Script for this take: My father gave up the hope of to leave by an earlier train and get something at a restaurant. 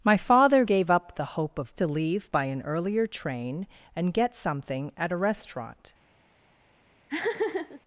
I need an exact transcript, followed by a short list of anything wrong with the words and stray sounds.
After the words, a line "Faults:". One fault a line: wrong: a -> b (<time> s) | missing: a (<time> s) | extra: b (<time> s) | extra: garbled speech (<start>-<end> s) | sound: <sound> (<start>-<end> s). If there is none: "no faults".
My father gave up the hope of to leave by an earlier train and get something at a restaurant.
Faults:
sound: laugh (7.1-7.8 s)